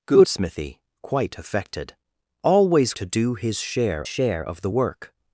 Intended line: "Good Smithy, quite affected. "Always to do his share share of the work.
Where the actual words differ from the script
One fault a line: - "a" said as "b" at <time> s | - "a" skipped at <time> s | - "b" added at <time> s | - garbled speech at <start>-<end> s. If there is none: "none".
none